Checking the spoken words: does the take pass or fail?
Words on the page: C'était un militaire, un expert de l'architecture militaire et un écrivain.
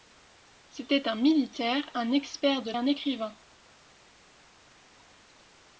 fail